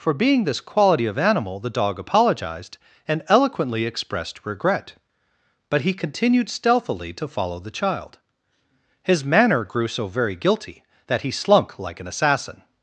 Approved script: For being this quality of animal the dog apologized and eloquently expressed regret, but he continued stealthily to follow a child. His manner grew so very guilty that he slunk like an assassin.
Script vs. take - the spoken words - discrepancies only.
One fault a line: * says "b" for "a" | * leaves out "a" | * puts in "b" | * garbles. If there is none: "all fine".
* says "the" for "a"